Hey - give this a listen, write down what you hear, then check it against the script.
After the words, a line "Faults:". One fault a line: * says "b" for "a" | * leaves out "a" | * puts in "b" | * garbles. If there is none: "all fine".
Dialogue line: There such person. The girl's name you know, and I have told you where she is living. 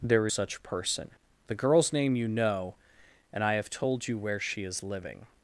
There such person. The girl's name you know, and I have told you where she is living.
Faults:
all fine